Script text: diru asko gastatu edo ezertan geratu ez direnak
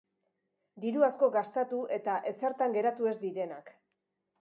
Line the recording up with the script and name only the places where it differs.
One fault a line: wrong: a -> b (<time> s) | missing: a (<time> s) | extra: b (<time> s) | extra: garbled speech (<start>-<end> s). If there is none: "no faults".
wrong: edo -> eta (2.0 s)